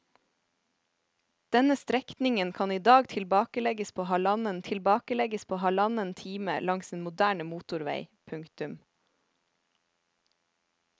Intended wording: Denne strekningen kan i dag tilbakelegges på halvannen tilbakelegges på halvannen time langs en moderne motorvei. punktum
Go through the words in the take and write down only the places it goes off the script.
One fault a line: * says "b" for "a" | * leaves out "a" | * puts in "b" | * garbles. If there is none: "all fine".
all fine